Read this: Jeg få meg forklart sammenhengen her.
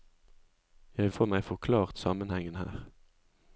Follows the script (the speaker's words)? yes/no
yes